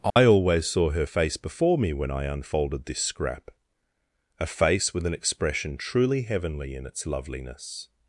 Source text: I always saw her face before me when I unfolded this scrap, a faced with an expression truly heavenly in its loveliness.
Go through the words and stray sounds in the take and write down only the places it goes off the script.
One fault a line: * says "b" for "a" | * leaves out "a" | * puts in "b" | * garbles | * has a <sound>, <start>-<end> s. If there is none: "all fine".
* has a dropout, 0.1-0.2 s
* says "face" for "faced"